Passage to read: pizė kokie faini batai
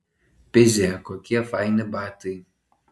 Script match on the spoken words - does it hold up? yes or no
yes